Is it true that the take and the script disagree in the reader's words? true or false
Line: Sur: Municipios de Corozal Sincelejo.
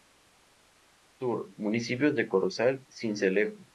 false